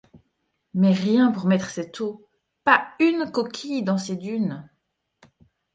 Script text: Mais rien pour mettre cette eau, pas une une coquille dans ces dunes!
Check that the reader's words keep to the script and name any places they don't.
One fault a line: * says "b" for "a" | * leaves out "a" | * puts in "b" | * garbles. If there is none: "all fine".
* leaves out "une"